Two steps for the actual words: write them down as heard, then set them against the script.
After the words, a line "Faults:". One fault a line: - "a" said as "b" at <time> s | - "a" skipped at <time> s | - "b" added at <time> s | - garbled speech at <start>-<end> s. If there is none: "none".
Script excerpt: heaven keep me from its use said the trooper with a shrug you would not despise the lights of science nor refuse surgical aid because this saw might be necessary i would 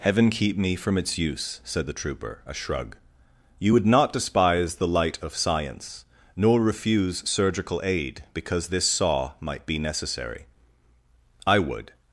heaven keep me from its use said the trooper a shrug you would not despise the light of science nor refuse surgical aid because this saw might be necessary i would
Faults:
- "with" skipped at 2.4 s
- "lights" said as "light" at 4.9 s